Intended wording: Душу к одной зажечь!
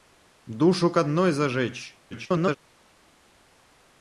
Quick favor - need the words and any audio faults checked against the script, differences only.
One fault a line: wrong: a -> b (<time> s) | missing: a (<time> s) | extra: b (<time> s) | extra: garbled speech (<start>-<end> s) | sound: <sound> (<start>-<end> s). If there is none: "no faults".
extra: garbled speech (2.1-2.6 s)